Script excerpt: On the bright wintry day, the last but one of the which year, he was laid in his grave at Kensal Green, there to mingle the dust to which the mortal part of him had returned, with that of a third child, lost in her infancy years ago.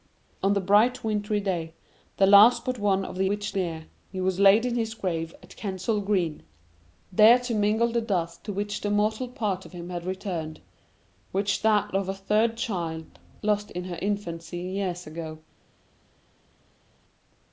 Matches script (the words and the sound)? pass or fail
pass